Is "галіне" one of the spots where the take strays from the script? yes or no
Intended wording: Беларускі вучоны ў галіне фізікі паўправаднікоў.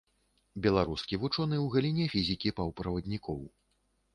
no